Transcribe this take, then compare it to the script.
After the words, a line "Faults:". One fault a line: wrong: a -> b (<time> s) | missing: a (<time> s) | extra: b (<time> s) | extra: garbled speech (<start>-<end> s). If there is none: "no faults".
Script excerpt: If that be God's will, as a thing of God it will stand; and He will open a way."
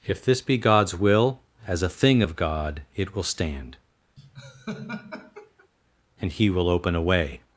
If this be God's will, as a thing of God it will stand; and He will open a way."
Faults:
wrong: that -> this (0.2 s)